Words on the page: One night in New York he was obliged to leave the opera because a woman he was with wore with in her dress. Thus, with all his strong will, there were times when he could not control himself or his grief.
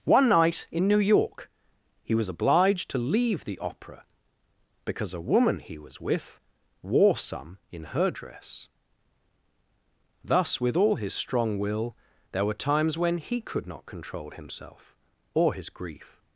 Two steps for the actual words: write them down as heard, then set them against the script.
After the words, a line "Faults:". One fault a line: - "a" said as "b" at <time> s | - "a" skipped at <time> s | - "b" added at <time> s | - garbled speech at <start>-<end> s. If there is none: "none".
One night in New York he was obliged to leave the opera because a woman he was with wore some in her dress. Thus, with all his strong will, there were times when he could not control himself or his grief.
Faults:
- "with" said as "some" at 7.2 s